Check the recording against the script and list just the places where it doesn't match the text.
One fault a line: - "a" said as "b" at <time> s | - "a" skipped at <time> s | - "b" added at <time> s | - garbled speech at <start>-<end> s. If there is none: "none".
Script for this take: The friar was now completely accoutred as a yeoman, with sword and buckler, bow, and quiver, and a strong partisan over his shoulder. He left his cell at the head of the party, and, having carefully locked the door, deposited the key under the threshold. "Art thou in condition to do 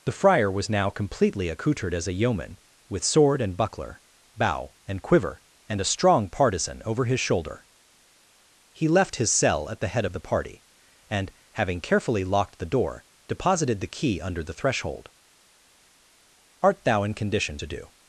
none